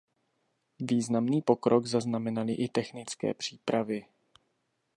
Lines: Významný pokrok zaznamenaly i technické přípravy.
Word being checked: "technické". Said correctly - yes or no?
yes